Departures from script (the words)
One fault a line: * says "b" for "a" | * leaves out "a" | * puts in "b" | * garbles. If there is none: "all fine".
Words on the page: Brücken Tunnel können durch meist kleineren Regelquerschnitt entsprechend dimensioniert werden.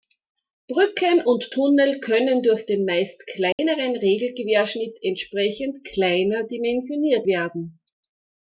* puts in "und"
* puts in "den"
* puts in "kleiner"